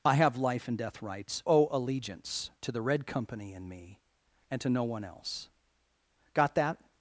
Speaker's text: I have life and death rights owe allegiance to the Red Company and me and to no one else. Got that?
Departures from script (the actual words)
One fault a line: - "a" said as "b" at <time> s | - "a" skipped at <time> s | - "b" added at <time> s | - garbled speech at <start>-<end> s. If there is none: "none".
none